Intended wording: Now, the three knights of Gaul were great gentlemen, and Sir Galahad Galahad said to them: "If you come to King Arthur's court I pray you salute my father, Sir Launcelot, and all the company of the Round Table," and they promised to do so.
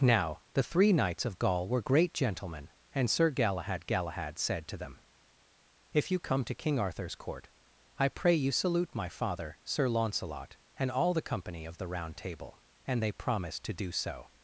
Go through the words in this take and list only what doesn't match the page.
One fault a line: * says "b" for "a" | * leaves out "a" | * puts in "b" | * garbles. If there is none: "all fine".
all fine